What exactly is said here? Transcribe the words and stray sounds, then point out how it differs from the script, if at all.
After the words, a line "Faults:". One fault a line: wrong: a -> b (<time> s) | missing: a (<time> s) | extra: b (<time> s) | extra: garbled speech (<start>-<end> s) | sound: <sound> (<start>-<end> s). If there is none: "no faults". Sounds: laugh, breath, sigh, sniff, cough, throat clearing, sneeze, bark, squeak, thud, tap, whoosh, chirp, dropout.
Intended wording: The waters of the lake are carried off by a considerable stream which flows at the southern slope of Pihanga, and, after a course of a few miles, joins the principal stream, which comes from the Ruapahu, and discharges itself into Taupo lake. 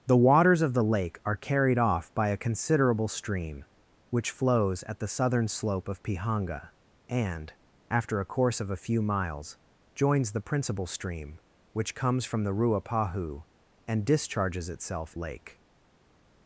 The waters of the lake are carried off by a considerable stream which flows at the southern slope of Pihanga, and, after a course of a few miles, joins the principal stream, which comes from the Ruapahu, and discharges itself lake.
Faults:
missing: into Taupo (15.2 s)